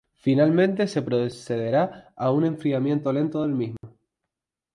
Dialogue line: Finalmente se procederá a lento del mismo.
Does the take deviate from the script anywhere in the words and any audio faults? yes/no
yes